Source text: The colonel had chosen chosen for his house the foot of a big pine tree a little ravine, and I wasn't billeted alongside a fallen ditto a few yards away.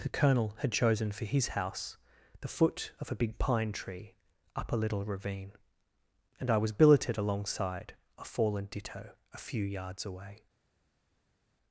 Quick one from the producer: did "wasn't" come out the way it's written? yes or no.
no